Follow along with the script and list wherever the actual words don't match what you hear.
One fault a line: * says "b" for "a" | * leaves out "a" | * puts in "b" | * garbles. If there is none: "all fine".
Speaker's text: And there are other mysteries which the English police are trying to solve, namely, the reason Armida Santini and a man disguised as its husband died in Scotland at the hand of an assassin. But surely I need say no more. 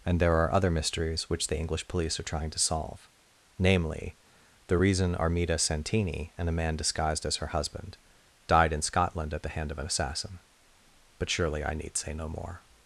* says "her" for "its"